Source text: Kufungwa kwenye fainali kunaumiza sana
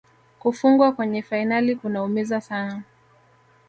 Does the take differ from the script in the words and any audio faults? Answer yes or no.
no